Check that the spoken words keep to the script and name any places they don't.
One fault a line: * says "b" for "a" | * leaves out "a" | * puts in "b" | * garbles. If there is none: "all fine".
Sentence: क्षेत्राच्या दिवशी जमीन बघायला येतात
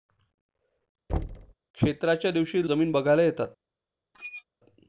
all fine